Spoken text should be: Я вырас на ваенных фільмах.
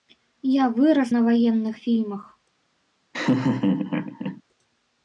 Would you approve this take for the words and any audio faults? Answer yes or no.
no